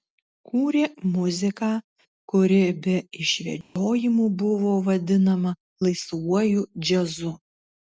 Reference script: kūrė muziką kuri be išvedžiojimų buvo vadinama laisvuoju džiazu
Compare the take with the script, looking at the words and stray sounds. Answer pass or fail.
fail